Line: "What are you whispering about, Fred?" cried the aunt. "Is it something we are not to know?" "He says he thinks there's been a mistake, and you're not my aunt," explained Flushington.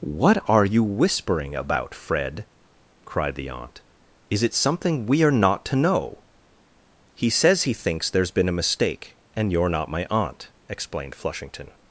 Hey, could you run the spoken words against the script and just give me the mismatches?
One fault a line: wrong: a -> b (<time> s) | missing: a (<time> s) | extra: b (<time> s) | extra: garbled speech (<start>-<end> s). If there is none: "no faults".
no faults